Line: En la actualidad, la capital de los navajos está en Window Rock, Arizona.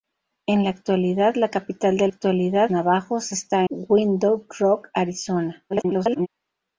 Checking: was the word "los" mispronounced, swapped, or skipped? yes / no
yes